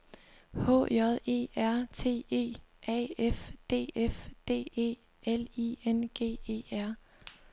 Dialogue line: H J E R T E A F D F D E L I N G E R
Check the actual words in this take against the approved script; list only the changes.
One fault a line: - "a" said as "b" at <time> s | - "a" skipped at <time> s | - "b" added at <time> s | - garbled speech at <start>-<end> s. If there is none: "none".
none